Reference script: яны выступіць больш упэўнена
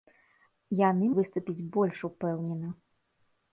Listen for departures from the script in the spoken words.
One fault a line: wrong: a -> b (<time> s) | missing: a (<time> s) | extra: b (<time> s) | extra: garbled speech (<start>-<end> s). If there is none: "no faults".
no faults